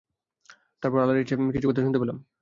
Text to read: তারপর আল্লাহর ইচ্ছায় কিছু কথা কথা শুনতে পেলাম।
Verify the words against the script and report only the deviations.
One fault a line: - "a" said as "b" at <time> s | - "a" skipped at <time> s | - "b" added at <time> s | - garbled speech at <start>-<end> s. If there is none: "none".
- "কথা" skipped at 1.8 s